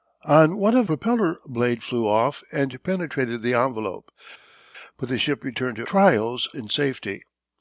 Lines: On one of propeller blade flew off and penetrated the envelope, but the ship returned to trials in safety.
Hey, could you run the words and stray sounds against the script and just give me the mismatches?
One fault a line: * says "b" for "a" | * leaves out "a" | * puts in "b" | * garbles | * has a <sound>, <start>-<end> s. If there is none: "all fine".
all fine